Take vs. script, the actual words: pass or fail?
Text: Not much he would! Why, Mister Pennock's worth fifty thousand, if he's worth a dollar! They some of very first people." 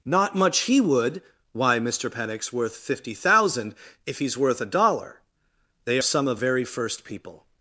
pass